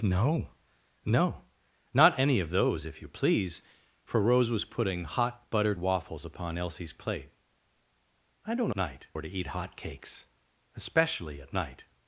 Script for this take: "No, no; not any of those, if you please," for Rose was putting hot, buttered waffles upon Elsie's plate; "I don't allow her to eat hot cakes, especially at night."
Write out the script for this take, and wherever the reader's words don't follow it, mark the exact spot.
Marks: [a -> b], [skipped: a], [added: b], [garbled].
"No, no; not any of those, if you please," for Rose was putting hot, buttered waffles upon Elsie's plate; "I don't [allow -> night] her to eat hot cakes, especially at night."